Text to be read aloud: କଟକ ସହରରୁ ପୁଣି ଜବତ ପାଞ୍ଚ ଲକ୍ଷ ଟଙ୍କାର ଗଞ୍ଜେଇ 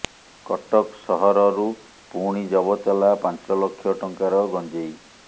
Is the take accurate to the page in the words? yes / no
no